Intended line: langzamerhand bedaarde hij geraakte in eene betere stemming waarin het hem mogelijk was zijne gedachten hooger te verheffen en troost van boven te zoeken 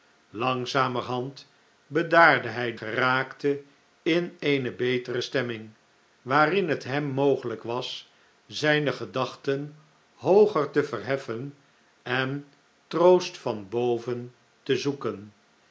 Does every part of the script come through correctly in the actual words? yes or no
yes